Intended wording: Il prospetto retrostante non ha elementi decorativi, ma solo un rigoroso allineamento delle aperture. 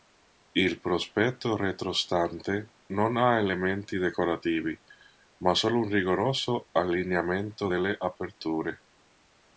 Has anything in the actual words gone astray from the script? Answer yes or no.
no